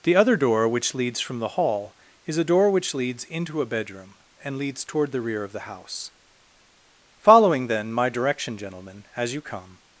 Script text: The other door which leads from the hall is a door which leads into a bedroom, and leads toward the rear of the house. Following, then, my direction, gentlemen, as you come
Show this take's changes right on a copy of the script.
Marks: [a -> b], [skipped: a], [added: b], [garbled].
The other door which leads from the hall is a door which leads into a bedroom, and leads toward the rear of the house. Following, then, my direction, gentlemen, as you come